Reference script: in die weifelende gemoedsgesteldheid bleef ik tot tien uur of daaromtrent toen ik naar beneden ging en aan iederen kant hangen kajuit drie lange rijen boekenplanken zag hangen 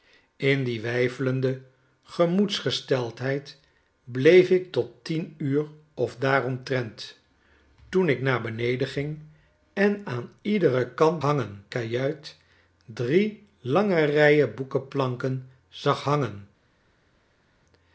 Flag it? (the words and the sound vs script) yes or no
no